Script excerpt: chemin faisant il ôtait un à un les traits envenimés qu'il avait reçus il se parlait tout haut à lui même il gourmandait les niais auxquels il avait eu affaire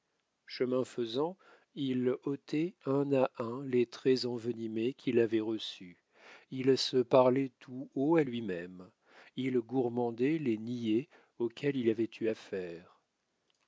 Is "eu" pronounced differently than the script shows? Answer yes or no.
no